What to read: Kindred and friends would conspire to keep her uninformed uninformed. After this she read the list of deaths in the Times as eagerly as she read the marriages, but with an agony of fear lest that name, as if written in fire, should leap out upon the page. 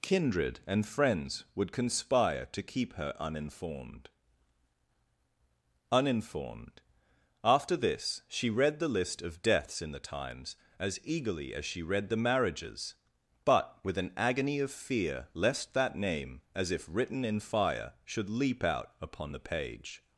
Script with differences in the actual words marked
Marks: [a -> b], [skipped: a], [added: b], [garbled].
Kindred and friends would conspire to keep her uninformed uninformed. After this she read the list of deaths in the Times as eagerly as she read the marriages, but with an agony of fear lest that name, as if written in fire, should leap out upon the page.